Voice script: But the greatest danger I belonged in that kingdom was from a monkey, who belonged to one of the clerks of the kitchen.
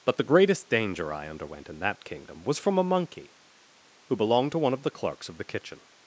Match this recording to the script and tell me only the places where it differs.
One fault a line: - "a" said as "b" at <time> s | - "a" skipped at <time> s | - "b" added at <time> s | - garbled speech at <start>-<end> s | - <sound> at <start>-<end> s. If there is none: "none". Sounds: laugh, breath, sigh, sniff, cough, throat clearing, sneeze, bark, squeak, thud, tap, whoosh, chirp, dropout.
- "belonged" said as "underwent" at 1.3 s